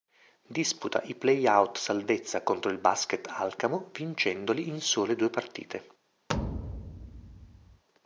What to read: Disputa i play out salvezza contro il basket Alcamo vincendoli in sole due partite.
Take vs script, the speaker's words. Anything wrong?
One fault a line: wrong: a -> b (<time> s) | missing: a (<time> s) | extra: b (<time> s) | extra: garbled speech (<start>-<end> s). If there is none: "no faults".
no faults